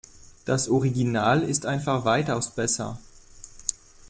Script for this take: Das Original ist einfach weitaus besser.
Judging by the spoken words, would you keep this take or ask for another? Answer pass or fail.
pass